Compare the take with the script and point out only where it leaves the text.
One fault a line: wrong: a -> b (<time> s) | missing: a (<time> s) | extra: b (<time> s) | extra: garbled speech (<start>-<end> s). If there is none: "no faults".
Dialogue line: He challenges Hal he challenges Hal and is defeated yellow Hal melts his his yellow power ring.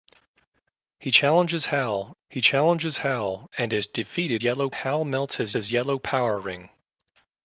no faults